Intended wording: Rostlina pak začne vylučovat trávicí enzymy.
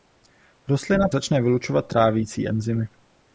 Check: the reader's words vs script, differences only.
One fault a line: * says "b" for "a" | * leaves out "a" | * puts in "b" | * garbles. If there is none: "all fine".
* leaves out "pak"